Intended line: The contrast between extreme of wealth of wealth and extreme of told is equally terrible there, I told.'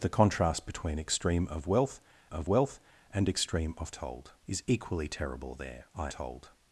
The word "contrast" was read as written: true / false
true